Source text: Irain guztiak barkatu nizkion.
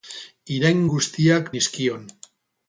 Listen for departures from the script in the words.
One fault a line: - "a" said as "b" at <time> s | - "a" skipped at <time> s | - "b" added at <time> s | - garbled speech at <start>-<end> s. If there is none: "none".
- "barkatu" skipped at 1.5 s